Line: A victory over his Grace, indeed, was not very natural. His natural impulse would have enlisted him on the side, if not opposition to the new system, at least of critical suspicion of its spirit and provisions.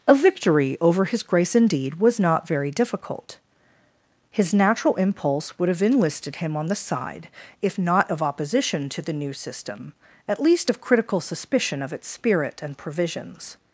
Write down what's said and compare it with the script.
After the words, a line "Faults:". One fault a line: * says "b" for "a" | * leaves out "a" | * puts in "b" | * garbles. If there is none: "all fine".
A victory over his Grace, indeed, was not very difficult. His natural impulse would have enlisted him on the side, if not of opposition to the new system, at least of critical suspicion of its spirit and provisions.
Faults:
* says "difficult" for "natural"
* puts in "of"